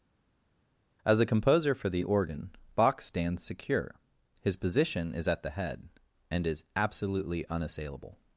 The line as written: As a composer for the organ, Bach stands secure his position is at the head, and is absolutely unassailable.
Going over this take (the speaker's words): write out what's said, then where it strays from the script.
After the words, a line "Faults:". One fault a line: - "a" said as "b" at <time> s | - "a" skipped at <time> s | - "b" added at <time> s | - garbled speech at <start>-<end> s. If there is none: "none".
As a composer for the organ, Bach stands secure his position is at the head, and is absolutely unassailable.
Faults:
none